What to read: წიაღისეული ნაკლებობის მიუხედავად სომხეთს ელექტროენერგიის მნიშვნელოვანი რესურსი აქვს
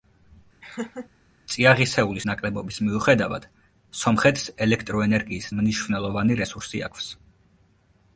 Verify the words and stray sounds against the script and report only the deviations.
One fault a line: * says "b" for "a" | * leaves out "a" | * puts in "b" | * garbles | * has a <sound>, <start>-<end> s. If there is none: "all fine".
* has a laugh, 0.6-1.1 s